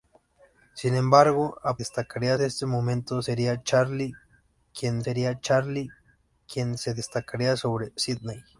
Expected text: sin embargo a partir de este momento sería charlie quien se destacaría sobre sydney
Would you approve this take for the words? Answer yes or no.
no